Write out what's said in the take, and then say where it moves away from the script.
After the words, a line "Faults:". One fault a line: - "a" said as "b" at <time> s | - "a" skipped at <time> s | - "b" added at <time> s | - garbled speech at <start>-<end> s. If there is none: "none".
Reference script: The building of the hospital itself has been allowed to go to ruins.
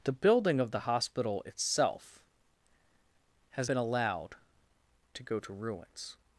The building of the hospital itself has been allowed to go to ruins.
Faults:
none